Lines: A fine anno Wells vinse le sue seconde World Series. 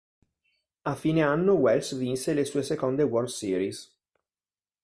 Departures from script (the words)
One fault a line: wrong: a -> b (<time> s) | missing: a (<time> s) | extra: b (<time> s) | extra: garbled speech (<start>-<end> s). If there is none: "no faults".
no faults